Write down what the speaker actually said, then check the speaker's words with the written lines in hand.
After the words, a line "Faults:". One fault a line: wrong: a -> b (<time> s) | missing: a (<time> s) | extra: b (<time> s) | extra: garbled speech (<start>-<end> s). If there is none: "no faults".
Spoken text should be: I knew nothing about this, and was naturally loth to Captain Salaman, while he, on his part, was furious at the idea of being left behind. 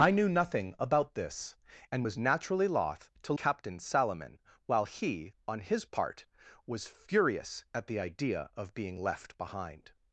I knew nothing about this, and was naturally loth to Captain Salaman, while he, on his part, was furious at the idea of being left behind.
Faults:
no faults